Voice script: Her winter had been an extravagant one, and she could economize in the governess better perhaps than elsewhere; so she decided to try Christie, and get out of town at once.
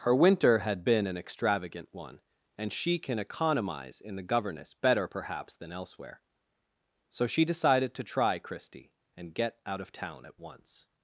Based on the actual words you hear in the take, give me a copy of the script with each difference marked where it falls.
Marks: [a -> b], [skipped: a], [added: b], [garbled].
Her winter had been an extravagant one, and she [could -> can] economize in the governess better perhaps than elsewhere; so she decided to try Christie, and get out of town at once.